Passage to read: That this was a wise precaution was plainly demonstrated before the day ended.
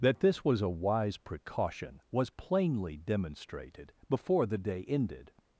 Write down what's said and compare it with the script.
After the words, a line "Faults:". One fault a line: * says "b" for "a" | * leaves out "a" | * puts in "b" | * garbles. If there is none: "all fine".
That this was a wise precaution was plainly demonstrated before the day ended.
Faults:
all fine